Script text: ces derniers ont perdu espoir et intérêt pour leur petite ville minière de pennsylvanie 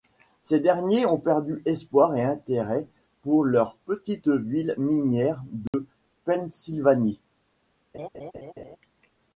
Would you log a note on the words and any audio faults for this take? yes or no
yes